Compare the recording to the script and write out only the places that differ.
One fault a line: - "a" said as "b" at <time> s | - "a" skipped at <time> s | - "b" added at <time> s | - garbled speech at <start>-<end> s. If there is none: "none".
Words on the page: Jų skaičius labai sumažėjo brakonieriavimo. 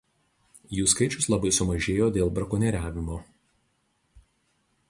- "dėl" added at 2.2 s